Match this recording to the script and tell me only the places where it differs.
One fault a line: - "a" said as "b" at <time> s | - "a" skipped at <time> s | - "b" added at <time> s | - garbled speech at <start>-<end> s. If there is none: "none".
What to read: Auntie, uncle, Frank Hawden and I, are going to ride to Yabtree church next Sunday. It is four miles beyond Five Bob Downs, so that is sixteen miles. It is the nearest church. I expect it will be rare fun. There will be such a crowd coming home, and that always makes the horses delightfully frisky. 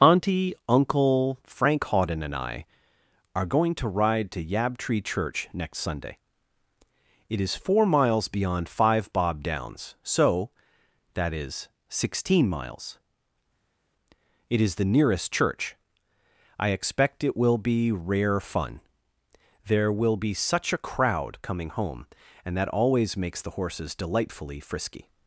none